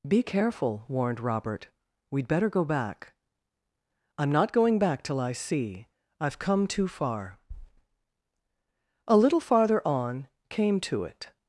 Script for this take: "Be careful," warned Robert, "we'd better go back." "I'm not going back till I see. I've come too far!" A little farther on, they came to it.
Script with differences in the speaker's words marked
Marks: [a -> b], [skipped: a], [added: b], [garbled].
"Be careful," warned Robert, "we'd better go back." "I'm not going back till I see. I've come too far!" A little farther on, [skipped: they] came to it.